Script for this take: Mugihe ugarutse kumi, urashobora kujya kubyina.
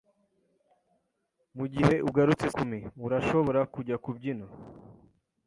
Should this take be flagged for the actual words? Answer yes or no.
no